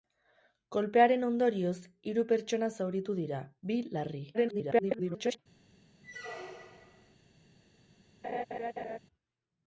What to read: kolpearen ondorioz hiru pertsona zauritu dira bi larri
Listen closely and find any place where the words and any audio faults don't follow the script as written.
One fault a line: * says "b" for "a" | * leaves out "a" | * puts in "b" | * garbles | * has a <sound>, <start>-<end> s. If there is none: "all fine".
* garbles
* has a squeak, 6.0-7.2 s
* has a laugh, 8.2-9.0 s